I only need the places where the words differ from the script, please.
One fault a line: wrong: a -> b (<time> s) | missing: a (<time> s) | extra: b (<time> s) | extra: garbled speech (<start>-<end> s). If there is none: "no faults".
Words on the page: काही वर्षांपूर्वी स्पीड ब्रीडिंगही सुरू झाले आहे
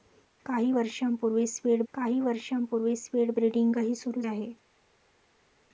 extra: काही वर्षांपूर्वी स्पीड (1.9 s)
missing: झाले (4.2 s)